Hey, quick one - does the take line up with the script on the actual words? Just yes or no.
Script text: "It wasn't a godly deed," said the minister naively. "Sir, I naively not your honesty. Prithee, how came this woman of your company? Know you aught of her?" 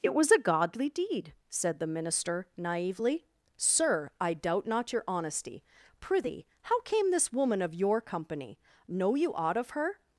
no